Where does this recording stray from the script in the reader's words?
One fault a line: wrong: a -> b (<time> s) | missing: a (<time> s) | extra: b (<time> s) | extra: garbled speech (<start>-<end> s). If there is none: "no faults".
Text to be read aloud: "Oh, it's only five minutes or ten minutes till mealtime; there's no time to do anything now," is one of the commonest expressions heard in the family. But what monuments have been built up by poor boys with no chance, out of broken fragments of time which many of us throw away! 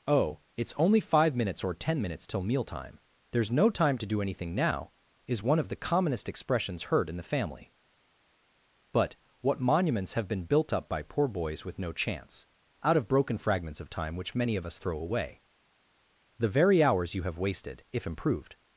extra: The very hours you have wasted if improved (16.4 s)